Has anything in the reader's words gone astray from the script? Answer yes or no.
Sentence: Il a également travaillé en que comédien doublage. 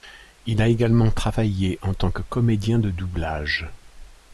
yes